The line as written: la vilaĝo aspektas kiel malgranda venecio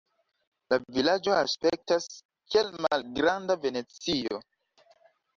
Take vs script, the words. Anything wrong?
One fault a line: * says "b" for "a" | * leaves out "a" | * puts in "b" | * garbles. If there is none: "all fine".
all fine